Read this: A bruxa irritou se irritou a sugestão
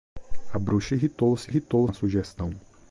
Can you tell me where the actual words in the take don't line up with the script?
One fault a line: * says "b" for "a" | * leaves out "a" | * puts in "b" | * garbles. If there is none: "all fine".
all fine